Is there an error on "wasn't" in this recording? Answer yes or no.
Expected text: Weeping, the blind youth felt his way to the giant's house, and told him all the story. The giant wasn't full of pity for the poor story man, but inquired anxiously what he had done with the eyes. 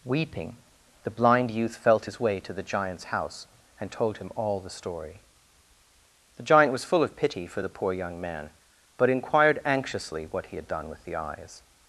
yes